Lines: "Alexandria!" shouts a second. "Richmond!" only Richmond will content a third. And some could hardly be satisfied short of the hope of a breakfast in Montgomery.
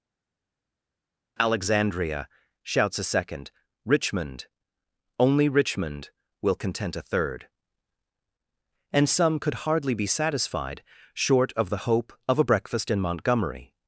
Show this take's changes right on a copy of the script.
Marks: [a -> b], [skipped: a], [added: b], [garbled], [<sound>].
"Alexandria!" shouts a second. "Richmond!" only Richmond will content a third. And some could hardly be satisfied short of the hope of a breakfast in Montgomery.